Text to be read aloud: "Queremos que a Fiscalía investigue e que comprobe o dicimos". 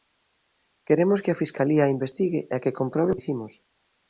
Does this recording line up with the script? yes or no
yes